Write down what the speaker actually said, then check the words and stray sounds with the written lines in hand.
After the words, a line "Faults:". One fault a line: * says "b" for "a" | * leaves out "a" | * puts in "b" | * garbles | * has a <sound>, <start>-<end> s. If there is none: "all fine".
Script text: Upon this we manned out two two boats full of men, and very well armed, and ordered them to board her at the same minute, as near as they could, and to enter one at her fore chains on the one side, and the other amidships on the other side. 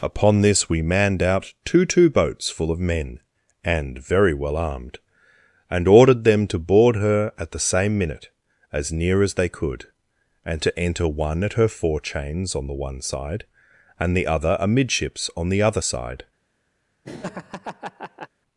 Upon this we manned out two two boats full of men, and very well armed, and ordered them to board her at the same minute, as near as they could, and to enter one at her fore chains on the one side, and the other amidships on the other side.
Faults:
* has a laugh, 17.0-18.3 s